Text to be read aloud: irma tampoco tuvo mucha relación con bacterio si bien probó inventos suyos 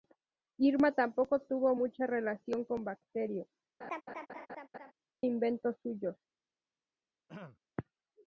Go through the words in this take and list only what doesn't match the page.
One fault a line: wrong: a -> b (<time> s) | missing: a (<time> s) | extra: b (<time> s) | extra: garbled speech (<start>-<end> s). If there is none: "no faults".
missing: si bien probó (3.5 s)